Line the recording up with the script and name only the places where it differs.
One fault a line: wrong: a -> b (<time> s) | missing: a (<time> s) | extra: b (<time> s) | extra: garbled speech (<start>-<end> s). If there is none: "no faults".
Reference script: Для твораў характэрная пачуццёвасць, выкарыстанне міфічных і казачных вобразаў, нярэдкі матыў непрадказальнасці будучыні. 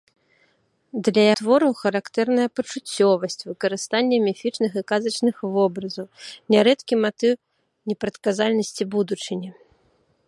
no faults